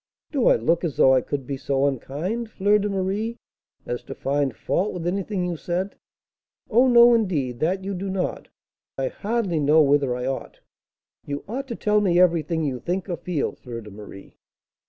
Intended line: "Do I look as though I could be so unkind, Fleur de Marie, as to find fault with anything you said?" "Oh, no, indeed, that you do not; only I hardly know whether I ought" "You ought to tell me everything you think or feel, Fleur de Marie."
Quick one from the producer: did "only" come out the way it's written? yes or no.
no